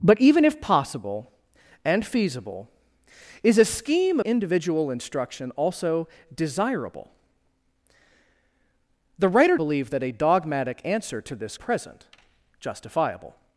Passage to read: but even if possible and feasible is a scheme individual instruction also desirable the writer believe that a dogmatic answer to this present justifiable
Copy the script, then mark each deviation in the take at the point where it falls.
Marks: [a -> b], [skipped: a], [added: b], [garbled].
but even if possible and feasible is a scheme individual instruction also desirable the writer believe that a dogmatic answer to this present justifiable